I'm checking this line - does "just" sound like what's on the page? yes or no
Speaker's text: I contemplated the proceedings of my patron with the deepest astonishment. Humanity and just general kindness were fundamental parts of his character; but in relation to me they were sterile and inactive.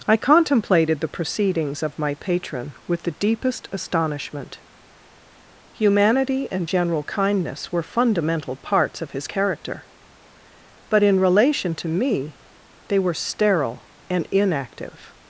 no